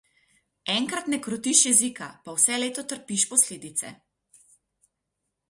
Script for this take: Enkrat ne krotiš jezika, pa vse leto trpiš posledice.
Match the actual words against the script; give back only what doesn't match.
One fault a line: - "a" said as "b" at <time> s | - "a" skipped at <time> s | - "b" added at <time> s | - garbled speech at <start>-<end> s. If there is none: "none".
none